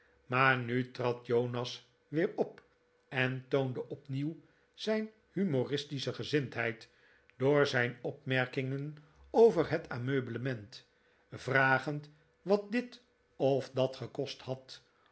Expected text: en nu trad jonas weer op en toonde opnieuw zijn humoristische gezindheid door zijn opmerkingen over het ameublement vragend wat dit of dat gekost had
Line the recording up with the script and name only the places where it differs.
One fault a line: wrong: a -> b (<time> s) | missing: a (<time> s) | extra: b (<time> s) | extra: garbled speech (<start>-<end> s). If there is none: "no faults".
wrong: en -> maar (0.2 s)